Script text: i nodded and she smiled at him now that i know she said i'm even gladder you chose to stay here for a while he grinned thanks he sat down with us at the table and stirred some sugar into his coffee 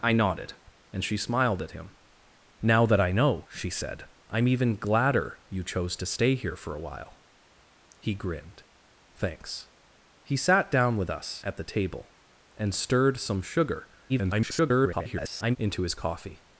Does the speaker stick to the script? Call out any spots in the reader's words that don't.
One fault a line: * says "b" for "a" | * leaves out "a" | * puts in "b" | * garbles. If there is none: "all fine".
* garbles